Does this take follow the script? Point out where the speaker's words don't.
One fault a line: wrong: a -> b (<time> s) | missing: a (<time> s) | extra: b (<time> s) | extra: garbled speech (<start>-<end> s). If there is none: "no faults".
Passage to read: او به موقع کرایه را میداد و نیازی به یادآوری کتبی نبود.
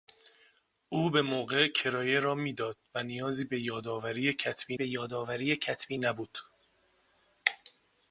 extra: به یادآوری کتبی (4.7 s)